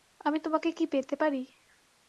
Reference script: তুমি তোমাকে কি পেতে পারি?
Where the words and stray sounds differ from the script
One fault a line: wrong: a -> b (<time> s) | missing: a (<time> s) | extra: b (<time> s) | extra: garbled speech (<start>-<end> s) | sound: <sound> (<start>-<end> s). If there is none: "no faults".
wrong: তুমি -> আমি (0.2 s)